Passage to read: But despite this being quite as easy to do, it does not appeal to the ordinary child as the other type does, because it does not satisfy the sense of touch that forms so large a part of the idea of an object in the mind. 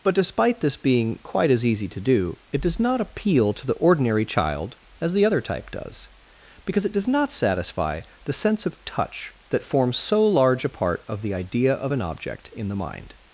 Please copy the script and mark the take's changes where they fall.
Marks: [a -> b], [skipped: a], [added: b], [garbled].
But despite this being quite as easy to do, it does not appeal to the ordinary child as the other type does, because it does not satisfy the sense of touch that forms so large a part of the idea of an object in the mind.